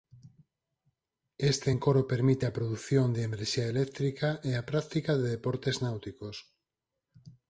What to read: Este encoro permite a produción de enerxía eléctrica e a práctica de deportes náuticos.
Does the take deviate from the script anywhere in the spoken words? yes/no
no